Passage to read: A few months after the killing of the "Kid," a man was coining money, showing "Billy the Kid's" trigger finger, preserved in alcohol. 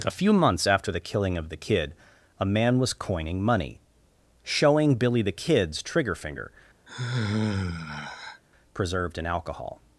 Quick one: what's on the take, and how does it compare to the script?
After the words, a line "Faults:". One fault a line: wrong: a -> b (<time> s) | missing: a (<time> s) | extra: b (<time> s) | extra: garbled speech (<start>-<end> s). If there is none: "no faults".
A few months after the killing of the "Kid," a man was coining money, showing "Billy the Kid's" trigger finger, preserved in alcohol.
Faults:
no faults